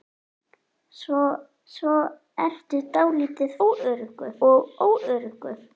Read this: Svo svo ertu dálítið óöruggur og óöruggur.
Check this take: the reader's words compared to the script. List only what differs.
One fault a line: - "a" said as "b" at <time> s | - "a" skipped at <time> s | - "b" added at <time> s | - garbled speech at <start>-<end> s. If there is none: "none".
none